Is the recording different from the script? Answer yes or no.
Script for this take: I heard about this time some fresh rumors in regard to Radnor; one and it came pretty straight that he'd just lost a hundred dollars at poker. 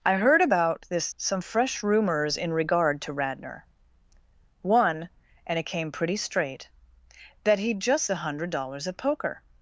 yes